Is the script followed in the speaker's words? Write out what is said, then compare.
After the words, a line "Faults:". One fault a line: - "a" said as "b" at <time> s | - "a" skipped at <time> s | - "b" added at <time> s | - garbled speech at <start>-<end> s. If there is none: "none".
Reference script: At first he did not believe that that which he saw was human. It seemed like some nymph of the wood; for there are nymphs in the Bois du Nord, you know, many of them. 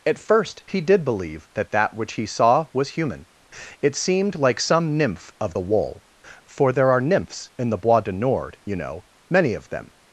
At first he did believe that that which he saw was human. It seemed like some nymph of the wool; for there are nymphs in the Bois du Nord, you know, many of them.
Faults:
- "not" skipped at 1.1 s
- "wood" said as "wool" at 5.6 s